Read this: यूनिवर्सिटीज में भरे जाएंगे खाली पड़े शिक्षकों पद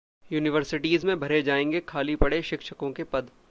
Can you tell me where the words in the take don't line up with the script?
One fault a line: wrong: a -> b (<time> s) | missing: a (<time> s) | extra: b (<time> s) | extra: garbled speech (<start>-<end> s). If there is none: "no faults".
extra: के (2.9 s)